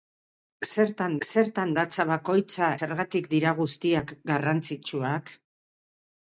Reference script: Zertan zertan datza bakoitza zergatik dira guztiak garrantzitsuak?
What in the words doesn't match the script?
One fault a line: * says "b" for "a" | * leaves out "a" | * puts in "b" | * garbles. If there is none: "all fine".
all fine